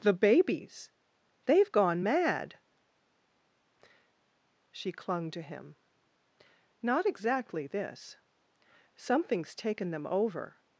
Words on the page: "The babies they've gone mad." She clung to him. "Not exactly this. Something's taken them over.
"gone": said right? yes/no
yes